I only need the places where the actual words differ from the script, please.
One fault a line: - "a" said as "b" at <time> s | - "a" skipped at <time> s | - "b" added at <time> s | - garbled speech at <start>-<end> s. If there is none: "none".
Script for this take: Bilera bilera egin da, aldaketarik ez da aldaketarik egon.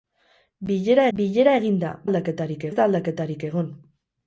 none